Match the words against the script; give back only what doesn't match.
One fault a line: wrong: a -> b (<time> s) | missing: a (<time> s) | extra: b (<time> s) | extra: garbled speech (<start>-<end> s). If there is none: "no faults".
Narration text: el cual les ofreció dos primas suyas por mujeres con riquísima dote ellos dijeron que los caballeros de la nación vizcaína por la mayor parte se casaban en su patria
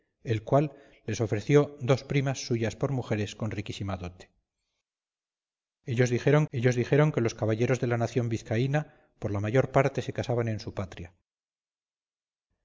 extra: ellos dijeron (6.5 s)